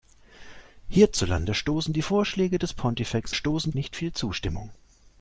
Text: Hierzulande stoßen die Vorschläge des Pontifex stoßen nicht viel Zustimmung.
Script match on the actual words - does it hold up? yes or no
yes